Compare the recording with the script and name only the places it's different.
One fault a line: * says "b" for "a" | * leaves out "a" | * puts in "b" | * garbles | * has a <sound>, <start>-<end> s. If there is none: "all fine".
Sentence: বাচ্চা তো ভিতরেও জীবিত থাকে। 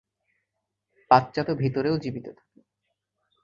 all fine